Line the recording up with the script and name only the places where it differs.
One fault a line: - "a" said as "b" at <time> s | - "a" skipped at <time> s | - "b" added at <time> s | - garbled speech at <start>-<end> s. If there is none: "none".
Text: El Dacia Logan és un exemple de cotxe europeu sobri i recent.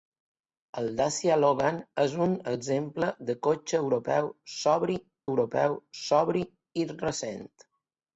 - "europeu sobri" added at 5.3 s